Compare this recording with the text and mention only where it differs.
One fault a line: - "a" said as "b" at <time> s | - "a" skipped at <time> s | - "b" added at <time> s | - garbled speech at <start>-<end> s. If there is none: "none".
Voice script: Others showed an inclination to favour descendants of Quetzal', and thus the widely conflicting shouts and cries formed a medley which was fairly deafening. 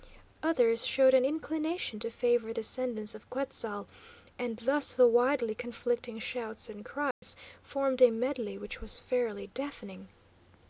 none